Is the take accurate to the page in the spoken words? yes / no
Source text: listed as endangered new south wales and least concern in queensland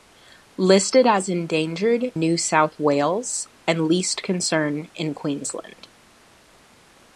yes